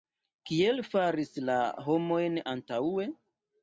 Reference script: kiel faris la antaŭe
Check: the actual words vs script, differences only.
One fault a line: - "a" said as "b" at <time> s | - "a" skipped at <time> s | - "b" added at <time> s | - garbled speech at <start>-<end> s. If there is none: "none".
- "homojn" added at 1.9 s